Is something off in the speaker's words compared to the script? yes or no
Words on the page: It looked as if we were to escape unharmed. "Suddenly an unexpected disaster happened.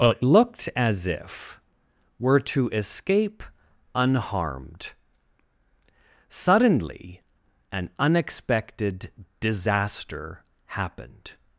yes